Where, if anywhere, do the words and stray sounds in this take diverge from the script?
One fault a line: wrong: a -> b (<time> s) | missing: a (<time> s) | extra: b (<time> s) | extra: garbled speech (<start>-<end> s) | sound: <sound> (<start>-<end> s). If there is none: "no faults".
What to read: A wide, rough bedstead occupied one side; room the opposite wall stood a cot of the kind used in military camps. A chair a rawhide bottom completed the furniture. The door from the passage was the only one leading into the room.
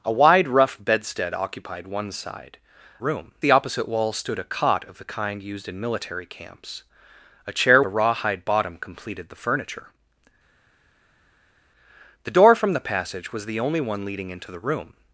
no faults